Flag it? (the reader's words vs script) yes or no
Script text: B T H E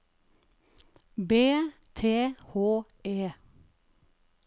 no